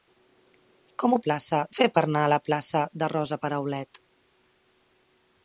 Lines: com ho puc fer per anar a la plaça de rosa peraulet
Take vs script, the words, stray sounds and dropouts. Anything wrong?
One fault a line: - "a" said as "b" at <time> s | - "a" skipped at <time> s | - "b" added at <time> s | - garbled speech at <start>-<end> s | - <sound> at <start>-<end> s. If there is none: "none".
- "puc" said as "plaça" at 1.3 s